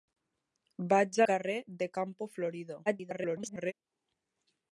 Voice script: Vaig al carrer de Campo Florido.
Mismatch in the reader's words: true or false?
true